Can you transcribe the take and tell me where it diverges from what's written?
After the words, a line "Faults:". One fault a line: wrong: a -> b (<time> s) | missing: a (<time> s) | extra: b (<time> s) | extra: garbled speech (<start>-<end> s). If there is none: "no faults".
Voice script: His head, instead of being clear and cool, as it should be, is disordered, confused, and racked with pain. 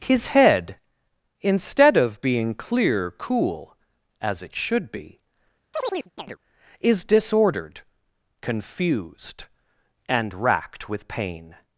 His head, instead of being clear cool, as it should be, is disordered, confused, and racked with pain.
Faults:
missing: and (3.1 s)